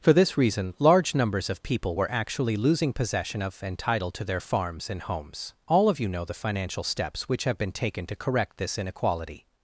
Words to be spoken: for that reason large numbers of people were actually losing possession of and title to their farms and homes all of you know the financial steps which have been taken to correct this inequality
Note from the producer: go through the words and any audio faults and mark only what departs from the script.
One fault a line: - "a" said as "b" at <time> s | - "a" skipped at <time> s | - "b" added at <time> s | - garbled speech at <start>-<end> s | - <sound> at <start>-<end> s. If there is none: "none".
- "that" said as "this" at 0.1 s